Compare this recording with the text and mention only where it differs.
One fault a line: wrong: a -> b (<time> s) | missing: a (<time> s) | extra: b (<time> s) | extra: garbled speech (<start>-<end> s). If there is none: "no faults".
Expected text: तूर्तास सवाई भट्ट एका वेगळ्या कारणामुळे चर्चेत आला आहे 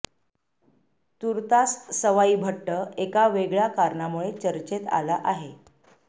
no faults